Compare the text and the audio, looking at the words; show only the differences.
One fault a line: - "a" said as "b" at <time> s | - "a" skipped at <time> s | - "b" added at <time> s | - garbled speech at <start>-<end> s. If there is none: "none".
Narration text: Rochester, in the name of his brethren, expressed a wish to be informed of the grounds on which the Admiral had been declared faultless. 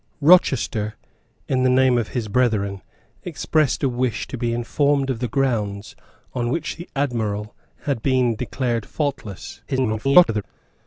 - garbled speech at 9.7-10.4 s